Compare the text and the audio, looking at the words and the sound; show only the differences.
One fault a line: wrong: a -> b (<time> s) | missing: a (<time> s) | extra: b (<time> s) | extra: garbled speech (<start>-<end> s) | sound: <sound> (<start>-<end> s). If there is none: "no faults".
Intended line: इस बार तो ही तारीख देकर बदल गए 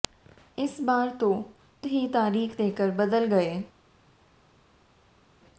no faults